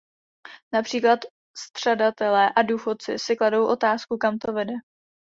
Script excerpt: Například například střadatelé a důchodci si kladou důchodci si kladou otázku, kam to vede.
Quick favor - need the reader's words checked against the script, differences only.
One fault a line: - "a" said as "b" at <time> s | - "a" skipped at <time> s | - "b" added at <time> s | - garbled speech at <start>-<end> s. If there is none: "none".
- "například" skipped at 1.2 s
- "důchodci si kladou" skipped at 3.7 s